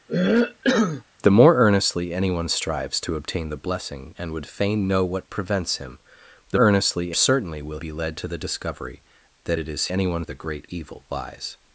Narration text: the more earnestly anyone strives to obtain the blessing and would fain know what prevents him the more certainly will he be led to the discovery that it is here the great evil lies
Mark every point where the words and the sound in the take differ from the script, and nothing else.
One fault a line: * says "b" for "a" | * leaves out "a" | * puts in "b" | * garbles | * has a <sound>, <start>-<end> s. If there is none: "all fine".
* has a cough, 0.1-1.0 s
* says "earnestly" for "more"
* leaves out "he"
* says "anyone" for "here"